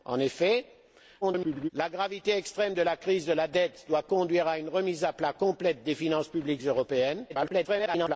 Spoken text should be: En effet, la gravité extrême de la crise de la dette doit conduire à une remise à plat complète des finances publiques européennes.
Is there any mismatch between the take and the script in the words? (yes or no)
yes